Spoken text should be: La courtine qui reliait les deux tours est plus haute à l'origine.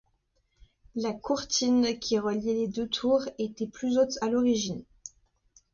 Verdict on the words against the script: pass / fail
fail